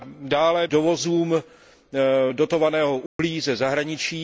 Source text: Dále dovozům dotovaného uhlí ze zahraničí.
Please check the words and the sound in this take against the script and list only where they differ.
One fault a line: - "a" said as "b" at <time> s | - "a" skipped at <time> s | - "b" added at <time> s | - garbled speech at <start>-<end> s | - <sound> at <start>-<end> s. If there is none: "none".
- dropout at 3.1-3.2 s